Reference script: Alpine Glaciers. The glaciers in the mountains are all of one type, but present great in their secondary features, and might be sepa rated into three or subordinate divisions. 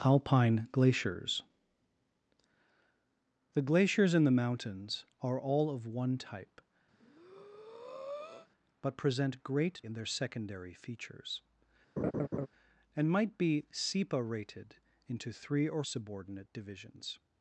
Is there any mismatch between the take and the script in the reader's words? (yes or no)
no